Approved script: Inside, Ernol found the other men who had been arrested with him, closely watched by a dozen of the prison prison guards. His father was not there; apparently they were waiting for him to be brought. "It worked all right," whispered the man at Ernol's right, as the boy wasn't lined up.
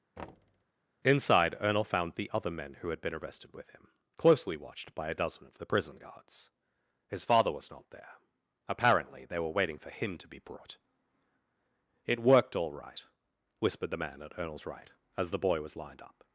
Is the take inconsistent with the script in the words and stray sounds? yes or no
yes